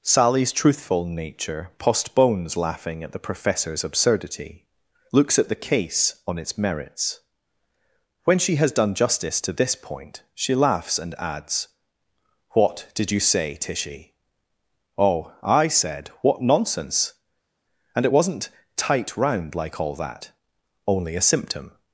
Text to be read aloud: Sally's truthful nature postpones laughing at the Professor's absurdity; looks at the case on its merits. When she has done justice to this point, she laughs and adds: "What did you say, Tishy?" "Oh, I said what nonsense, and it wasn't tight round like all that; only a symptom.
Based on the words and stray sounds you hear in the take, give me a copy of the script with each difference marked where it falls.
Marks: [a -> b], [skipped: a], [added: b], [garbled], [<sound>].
Sally's truthful nature postpones laughing at the Professor's absurdity; looks at the case on its merits. When she has done justice to this point, she laughs and adds: "What did you say, Tishy?" "Oh, I said what nonsense, and it wasn't tight round like all that; only a symptom.